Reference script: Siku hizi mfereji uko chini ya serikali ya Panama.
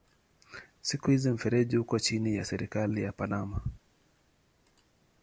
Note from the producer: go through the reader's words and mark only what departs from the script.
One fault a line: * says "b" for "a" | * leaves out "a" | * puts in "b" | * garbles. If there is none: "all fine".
all fine